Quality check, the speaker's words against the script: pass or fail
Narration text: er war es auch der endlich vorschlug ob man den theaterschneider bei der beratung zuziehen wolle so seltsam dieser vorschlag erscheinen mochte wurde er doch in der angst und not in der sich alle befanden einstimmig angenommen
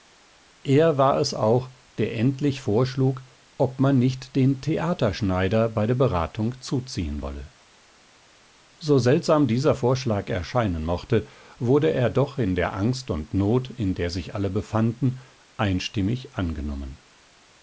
fail